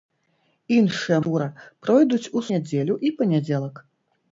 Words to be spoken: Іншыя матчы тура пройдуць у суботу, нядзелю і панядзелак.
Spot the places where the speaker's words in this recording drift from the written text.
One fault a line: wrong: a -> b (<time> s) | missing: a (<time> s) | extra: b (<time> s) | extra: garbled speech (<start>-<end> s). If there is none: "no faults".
missing: матчы (1.2 s)
missing: суботу (2.4 s)